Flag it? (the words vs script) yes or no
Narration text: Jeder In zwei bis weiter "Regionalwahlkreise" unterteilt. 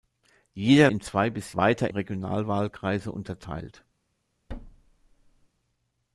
no